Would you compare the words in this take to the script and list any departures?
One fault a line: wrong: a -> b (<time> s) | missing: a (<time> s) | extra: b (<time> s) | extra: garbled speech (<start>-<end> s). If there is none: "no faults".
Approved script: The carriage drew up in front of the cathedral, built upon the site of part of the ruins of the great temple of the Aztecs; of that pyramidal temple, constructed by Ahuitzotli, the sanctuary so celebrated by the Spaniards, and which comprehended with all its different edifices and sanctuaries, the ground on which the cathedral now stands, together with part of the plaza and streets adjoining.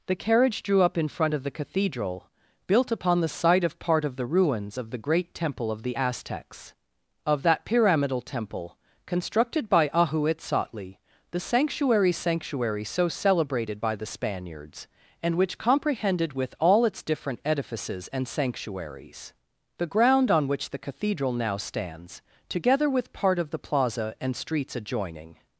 extra: sanctuary (12.1 s)